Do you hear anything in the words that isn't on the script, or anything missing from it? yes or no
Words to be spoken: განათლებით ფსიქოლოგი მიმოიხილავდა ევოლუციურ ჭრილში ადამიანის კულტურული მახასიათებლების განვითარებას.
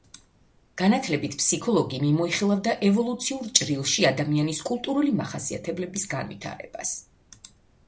no